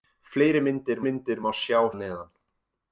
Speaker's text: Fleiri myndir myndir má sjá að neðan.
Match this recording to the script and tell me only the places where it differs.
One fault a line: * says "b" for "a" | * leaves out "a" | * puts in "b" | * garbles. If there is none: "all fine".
all fine